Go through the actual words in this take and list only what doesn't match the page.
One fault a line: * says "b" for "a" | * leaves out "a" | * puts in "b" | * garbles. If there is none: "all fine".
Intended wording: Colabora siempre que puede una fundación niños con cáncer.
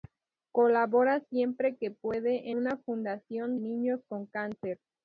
all fine